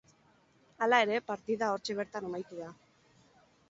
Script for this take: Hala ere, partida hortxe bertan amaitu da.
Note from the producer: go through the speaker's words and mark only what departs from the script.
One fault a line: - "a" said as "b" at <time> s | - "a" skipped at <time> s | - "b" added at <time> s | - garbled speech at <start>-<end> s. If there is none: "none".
none